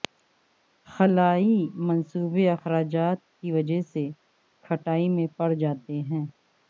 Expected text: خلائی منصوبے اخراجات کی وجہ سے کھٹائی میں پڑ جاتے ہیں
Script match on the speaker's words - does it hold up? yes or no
yes